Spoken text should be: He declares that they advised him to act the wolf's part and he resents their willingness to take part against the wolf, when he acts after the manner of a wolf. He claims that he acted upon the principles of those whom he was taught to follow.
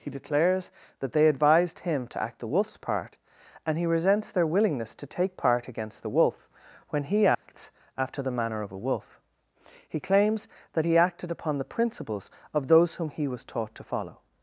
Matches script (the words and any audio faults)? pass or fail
fail